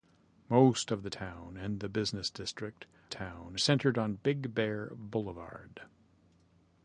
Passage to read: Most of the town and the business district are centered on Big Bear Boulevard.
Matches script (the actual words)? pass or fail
fail